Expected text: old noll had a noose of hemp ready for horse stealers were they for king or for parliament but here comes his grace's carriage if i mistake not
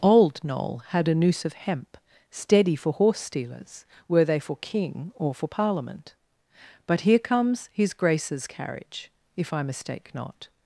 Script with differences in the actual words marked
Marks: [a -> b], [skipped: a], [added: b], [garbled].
old noll had a noose of hemp [ready -> steady] for horse stealers were they for king or for parliament but here comes his grace's carriage if i mistake not